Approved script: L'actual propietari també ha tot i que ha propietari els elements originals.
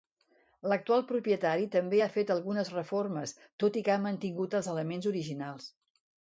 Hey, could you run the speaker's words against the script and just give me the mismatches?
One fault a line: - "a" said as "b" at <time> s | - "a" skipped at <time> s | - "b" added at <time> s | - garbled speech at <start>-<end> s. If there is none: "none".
- "fet algunes reformes" added at 2.1 s
- "propietari" said as "mantingut" at 4.1 s